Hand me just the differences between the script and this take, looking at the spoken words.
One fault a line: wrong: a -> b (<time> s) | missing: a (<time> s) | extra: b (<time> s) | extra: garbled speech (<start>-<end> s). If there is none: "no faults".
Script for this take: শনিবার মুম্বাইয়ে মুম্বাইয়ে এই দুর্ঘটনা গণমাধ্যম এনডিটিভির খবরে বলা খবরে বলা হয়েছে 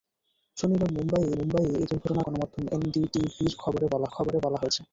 no faults